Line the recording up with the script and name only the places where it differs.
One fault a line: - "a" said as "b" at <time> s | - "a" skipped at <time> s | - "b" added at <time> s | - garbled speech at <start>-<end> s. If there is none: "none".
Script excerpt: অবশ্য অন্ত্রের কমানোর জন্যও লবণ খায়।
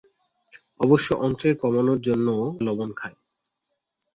none